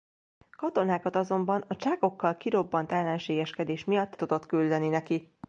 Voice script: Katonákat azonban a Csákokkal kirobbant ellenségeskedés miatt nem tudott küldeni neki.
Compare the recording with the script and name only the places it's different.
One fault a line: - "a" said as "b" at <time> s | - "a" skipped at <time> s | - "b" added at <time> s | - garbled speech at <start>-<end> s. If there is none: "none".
- "nem" skipped at 4.2 s